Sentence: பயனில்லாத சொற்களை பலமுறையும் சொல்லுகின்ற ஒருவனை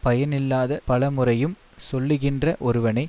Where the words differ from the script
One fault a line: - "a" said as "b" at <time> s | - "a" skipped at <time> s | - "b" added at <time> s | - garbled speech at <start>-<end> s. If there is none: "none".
- "சொற்களை" skipped at 0.8 s